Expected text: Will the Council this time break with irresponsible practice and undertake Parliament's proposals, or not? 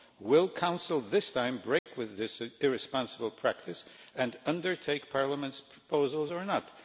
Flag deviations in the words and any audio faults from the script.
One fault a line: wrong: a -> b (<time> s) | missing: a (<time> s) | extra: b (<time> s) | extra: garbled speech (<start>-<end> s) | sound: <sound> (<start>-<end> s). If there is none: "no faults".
sound: dropout (1.8-1.9 s)
extra: this (2.2 s)